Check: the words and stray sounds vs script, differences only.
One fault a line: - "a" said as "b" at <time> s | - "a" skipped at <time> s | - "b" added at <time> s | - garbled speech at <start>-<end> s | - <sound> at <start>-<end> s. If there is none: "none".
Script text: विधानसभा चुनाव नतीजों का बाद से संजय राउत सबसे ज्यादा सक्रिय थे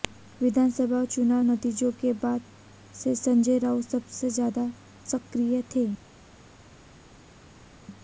- "का" said as "के" at 2.0 s